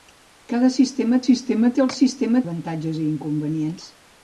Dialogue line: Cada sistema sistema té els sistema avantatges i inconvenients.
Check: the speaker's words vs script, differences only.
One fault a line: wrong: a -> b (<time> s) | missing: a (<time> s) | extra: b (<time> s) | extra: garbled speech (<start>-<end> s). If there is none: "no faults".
no faults